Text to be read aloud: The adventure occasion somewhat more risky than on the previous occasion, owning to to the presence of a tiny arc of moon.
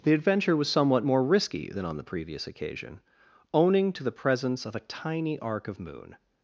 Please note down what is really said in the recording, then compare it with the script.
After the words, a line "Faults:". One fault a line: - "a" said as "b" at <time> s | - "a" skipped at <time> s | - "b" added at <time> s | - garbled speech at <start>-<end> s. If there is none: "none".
The adventure was somewhat more risky than on the previous occasion, owning to the presence of a tiny arc of moon.
Faults:
- "occasion" said as "was" at 0.6 s
- "to" skipped at 4.0 s